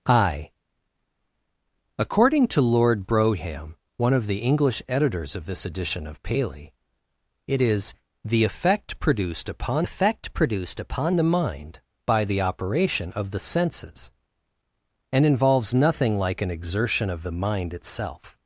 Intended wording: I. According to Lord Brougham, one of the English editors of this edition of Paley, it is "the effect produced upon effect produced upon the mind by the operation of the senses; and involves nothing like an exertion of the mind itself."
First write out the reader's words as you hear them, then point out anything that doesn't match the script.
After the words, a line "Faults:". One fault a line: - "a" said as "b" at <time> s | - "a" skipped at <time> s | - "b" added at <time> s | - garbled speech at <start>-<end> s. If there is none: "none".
I. According to Lord Brougham, one of the English editors of this edition of Paley, it is "the effect produced upon effect produced upon the mind by the operation of the senses; and involves nothing like an exertion of the mind itself."
Faults:
none